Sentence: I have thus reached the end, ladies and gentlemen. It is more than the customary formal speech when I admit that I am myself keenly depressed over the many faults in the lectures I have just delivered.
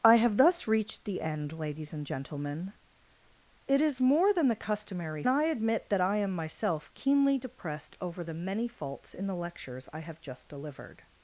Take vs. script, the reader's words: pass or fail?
fail